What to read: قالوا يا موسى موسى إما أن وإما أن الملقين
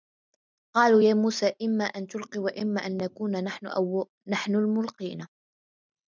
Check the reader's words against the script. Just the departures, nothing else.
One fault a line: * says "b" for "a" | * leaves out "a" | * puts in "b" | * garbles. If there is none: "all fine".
* leaves out "موسى"
* puts in "تلقي"
* puts in "نكون نحن"